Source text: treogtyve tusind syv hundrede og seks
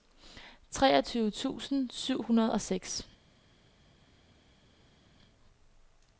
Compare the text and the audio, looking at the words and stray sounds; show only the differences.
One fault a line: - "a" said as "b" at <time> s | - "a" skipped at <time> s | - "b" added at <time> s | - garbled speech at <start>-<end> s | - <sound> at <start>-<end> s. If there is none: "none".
none